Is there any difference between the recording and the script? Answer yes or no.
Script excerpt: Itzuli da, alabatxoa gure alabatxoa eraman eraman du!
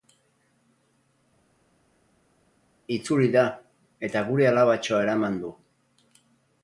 yes